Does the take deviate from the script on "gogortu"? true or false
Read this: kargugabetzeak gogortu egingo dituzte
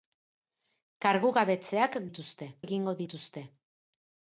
true